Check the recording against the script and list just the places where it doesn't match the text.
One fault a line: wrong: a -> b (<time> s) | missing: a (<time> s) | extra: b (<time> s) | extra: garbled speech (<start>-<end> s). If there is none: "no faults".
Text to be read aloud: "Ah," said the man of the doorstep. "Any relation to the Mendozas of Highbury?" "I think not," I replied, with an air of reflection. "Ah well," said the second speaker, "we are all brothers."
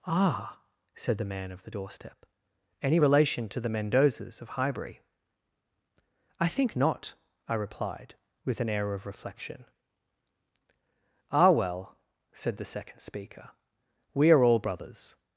no faults